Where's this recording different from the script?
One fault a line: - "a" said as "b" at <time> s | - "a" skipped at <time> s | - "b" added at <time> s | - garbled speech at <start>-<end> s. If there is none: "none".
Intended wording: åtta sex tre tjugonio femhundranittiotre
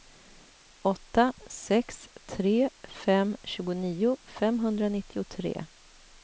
- "fem" added at 2.9 s